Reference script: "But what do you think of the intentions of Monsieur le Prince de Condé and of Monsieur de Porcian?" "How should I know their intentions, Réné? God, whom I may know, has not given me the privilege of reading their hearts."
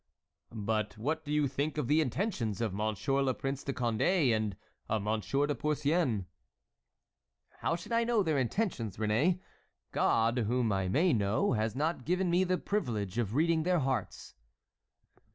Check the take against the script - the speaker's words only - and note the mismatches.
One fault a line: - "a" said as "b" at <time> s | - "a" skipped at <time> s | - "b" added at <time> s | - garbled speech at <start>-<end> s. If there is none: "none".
none